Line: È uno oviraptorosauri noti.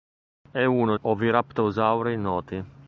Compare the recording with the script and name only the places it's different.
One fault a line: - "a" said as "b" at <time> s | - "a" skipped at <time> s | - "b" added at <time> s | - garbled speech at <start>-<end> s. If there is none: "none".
none